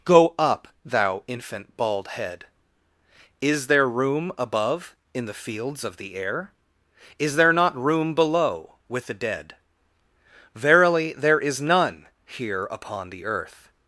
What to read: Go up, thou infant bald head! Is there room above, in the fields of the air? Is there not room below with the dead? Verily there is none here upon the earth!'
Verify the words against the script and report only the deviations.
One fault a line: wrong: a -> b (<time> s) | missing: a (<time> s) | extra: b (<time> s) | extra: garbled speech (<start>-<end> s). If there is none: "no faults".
no faults